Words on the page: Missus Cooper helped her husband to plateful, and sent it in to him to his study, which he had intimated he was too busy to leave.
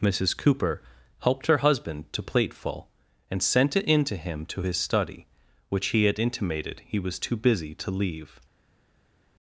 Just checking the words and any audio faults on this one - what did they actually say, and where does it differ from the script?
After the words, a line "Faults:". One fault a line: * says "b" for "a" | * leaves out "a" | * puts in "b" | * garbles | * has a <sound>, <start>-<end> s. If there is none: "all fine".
Missus Cooper helped her husband to plateful, and sent it in to him to his study, which he had intimated he was too busy to leave.
Faults:
all fine